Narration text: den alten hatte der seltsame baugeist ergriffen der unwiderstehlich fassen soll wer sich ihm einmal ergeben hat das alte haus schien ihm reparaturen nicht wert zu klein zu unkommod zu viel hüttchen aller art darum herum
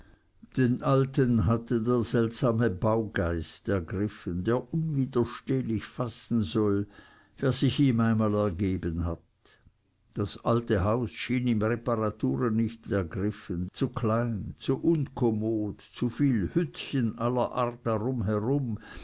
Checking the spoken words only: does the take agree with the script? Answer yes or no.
no